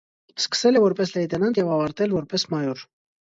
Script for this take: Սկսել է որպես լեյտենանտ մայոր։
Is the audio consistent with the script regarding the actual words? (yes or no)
no